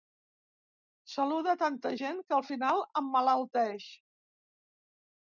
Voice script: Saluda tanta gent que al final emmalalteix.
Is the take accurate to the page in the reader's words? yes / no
yes